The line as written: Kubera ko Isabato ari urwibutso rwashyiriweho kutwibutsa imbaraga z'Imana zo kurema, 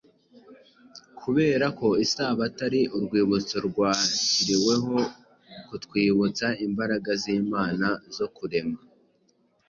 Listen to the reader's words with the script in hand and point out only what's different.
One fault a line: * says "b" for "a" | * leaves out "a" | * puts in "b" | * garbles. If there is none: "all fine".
all fine